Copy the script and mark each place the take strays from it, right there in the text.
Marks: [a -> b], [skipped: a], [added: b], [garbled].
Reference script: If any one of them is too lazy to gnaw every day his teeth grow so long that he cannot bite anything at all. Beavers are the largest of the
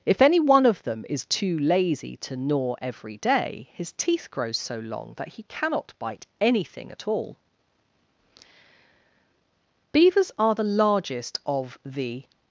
If any one of them is too lazy to gnaw every day his teeth grow so long that he cannot bite anything at all. Beavers are the largest of the